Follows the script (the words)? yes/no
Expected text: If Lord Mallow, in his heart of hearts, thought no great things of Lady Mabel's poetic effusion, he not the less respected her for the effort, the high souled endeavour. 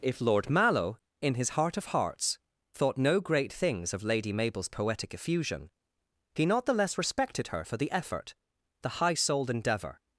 yes